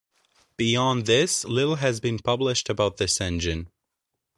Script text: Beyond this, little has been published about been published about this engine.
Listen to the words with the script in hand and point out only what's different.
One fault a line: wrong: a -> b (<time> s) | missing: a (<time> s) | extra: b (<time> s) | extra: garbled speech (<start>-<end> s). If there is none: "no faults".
missing: been published about (3.0 s)